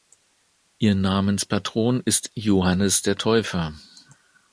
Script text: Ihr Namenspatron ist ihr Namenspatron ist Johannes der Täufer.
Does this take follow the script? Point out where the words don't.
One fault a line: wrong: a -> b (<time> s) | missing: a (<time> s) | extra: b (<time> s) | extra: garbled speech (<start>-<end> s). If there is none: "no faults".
missing: ihr Namenspatron ist (2.3 s)